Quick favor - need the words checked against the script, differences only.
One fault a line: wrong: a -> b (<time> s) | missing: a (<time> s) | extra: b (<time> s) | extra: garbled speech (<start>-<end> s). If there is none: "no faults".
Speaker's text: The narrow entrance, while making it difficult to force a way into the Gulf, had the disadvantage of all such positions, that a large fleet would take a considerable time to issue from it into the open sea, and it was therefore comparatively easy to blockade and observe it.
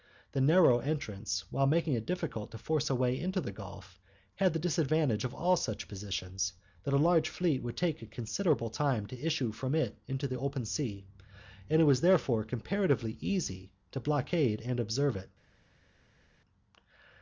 no faults